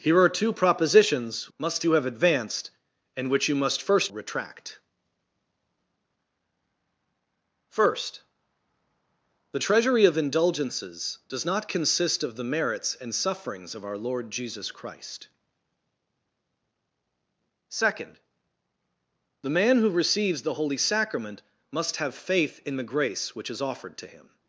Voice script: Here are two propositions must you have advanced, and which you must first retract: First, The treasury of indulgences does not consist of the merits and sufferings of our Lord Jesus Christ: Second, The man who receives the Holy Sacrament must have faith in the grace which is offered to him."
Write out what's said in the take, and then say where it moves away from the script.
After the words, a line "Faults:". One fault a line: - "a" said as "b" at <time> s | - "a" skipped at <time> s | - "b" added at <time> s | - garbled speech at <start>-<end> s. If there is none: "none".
Here are two propositions must you have advanced, and which you must first retract: First, The treasury of indulgences does not consist of the merits and sufferings of our Lord Jesus Christ: Second, The man who receives the Holy Sacrament must have faith in the grace which is offered to him."
Faults:
none